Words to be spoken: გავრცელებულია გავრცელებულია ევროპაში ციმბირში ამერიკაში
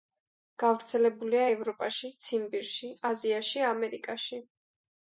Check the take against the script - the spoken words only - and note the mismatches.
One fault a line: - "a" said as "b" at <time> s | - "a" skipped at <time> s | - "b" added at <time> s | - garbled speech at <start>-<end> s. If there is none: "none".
- "გავრცელებულია" skipped at 1.4 s
- "აზიაში" added at 3.1 s